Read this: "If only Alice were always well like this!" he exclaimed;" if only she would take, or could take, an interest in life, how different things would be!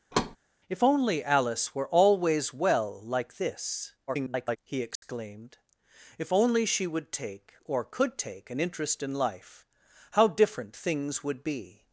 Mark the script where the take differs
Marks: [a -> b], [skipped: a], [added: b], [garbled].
"If only Alice were always well like this!" [garbled] he exclaimed;" if only she would take, or could take, an interest in life, how different things would be!